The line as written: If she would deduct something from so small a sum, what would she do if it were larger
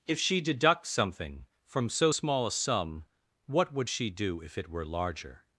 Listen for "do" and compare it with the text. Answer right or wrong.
right